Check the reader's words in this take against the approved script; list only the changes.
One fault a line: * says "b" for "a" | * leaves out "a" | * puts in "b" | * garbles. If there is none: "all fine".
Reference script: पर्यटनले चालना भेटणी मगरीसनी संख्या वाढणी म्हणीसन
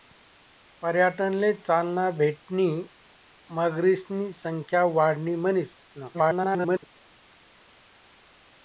* garbles